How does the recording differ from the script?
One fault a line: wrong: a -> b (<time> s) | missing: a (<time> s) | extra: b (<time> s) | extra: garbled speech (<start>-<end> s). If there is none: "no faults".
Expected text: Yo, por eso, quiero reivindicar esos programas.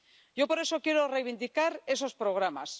no faults